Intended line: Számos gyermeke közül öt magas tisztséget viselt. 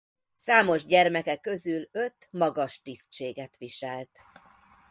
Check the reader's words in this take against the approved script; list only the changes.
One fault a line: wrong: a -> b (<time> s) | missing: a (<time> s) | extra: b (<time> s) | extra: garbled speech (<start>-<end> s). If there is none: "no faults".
no faults